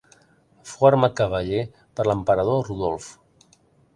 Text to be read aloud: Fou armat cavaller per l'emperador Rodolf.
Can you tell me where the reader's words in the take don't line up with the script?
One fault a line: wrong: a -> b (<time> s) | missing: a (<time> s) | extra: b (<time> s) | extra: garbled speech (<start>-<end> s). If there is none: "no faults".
no faults